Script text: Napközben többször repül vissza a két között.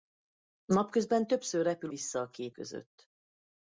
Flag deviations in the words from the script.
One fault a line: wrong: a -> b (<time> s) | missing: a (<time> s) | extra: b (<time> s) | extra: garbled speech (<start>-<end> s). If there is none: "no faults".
no faults